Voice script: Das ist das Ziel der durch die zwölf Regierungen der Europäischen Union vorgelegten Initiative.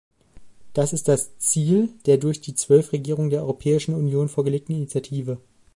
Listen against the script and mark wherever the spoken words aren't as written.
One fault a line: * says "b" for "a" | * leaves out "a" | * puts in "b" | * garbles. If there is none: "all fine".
all fine